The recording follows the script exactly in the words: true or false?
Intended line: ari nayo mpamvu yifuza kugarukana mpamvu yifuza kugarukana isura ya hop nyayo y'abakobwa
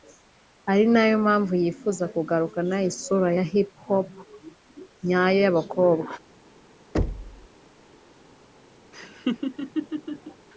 false